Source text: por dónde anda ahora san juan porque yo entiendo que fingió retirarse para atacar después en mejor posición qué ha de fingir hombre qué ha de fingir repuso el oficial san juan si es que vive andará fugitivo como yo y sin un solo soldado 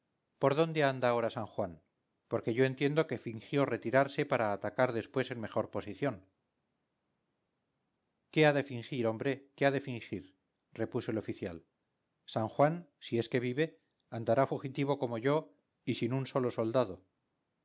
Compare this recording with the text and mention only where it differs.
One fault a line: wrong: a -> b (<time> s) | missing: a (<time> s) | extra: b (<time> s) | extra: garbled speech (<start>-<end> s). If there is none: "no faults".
no faults